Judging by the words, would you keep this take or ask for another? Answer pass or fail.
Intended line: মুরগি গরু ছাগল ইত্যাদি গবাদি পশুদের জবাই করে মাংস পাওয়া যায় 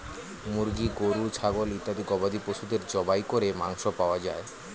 pass